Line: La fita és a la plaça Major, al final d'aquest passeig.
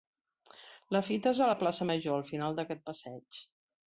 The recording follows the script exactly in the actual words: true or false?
true